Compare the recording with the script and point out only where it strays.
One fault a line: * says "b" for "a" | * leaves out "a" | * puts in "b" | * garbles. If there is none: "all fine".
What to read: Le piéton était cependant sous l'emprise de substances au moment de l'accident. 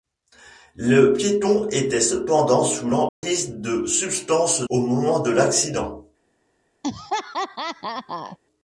all fine